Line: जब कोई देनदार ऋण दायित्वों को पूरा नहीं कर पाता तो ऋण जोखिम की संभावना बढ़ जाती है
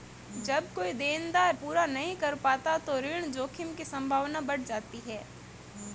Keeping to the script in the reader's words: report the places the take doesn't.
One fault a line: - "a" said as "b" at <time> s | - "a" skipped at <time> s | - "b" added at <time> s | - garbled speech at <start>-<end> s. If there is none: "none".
- "ऋण दायित्वों को" skipped at 1.6 s